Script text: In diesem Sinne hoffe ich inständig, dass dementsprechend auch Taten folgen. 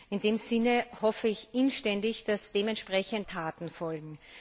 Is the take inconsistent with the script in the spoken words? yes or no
yes